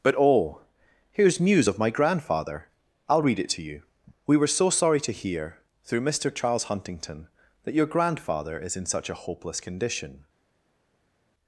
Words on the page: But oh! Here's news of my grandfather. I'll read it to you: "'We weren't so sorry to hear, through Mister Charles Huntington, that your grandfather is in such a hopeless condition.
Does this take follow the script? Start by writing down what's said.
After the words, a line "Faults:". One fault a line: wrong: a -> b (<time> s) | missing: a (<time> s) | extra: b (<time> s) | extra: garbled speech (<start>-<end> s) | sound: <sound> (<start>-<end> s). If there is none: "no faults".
But oh! Here's news of my grandfather. I'll read it to you: "'We were so sorry to hear, through Mister Charles Huntington, that your grandfather is in such a hopeless condition.
Faults:
wrong: weren't -> were (4.4 s)